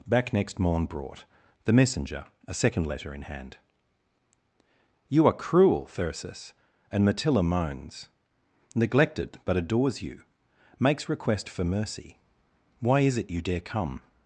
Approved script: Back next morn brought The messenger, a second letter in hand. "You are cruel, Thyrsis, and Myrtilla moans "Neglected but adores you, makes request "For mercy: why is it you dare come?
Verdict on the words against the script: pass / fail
pass